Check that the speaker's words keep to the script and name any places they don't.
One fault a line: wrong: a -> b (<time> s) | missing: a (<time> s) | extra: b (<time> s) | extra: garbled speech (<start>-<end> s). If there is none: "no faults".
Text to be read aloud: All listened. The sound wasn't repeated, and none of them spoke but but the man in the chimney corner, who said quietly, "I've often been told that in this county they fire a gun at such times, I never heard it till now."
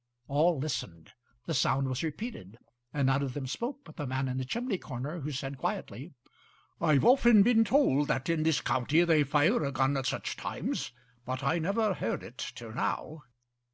wrong: wasn't -> was (1.9 s)
missing: but (4.0 s)
extra: but (11.2 s)